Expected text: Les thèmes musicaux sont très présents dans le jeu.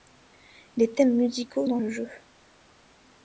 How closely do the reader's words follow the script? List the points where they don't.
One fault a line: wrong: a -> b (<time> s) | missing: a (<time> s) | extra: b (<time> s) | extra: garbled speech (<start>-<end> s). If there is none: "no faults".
missing: sont très présents (1.7 s)